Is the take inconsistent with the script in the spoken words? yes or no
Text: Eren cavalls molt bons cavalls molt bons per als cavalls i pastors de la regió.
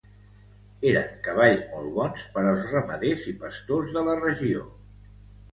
yes